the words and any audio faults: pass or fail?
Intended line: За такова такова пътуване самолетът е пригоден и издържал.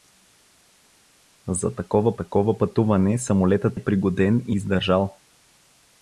pass